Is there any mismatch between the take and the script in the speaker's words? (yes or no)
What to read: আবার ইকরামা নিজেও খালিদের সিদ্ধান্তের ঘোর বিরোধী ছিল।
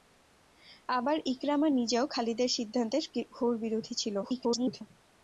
yes